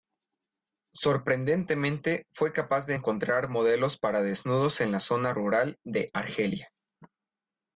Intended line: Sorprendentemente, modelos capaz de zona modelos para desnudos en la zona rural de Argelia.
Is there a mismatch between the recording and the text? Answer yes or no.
yes